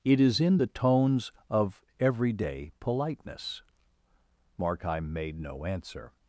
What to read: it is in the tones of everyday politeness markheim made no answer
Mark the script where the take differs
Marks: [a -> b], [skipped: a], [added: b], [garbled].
it is in the tones of everyday politeness markheim made no answer